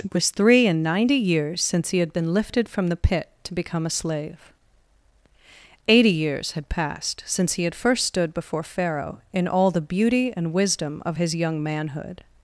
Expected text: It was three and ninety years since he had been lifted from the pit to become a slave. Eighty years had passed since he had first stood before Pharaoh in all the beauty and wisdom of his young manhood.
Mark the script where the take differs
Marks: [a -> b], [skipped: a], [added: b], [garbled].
It was three and ninety years since he had been lifted from the pit to become a slave. Eighty years had passed since he had first stood before Pharaoh in all the beauty and wisdom of his young manhood.